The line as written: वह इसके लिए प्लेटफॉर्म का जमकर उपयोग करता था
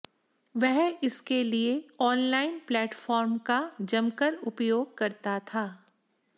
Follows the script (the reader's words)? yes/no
no